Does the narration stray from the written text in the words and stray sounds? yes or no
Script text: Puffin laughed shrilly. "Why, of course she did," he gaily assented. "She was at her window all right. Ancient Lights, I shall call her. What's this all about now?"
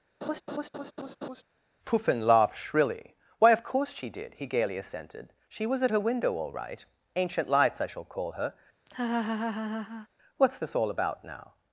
yes